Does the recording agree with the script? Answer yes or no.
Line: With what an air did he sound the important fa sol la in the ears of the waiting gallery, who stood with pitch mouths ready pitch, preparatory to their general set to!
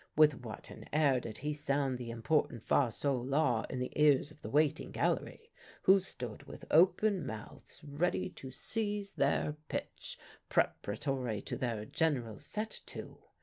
no